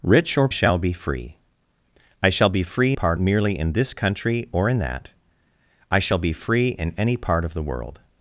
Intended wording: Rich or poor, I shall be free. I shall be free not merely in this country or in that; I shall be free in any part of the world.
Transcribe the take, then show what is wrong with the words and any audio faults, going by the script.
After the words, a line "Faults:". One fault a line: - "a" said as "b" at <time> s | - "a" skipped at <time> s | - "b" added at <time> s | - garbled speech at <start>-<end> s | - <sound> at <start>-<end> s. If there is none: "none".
Rich or shall be free. I shall be free part merely in this country or in that; I shall be free in any part of the world.
Faults:
- "poor I" skipped at 0.5 s
- "not" said as "part" at 2.9 s